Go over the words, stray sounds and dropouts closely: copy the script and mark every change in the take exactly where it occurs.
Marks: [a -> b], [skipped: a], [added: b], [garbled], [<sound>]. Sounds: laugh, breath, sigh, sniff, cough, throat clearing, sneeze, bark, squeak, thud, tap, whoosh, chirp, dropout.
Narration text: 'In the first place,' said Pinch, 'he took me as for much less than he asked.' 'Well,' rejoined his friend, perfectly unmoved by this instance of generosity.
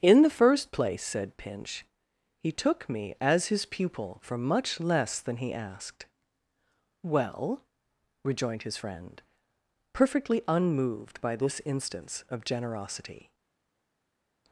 'In the first place,' said Pinch, 'he took me as [added: his pupil] for much less than he asked.' 'Well,' rejoined his friend, perfectly unmoved by this instance of generosity.